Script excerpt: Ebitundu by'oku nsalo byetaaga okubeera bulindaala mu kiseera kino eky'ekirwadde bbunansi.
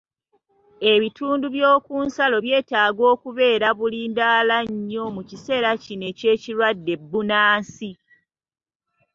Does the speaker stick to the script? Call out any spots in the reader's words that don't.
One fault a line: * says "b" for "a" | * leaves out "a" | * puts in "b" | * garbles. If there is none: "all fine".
* puts in "nnyo"